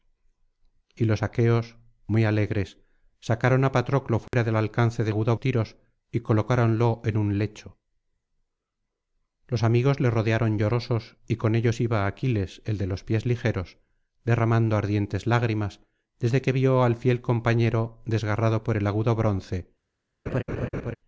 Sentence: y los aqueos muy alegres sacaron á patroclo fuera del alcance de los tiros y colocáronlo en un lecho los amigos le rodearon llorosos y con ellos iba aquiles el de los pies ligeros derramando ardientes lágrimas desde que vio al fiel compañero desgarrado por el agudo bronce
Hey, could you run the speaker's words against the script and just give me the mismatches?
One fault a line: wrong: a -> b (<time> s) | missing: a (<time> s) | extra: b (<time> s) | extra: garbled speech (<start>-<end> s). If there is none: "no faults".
wrong: los -> agudo (5.1 s)